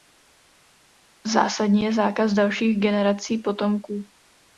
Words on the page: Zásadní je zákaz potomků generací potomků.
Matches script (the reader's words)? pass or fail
fail